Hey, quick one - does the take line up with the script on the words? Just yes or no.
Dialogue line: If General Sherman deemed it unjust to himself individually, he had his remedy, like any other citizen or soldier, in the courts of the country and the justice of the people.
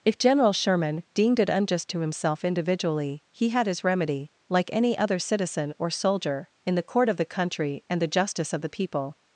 no